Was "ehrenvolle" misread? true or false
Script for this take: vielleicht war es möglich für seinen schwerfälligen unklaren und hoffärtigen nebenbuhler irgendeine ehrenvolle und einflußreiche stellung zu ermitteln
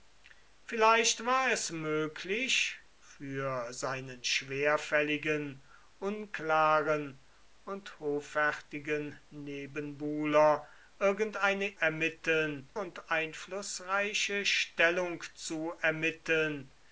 true